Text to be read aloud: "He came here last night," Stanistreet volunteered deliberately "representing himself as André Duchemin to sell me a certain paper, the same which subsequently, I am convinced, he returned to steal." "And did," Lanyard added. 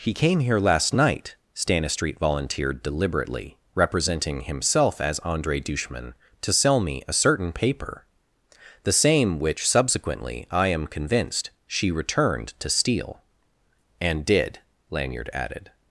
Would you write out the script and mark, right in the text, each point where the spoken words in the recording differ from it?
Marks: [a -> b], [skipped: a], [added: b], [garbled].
"He came here last night," Stanistreet volunteered deliberately "representing himself as André Duchemin to sell me a certain paper, the same which subsequently, I am convinced, [he -> she] returned to steal." "And did," Lanyard added.